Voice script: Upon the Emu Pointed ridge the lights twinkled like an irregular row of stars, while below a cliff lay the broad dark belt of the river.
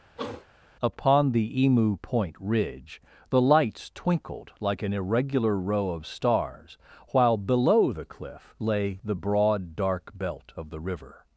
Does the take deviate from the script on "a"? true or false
true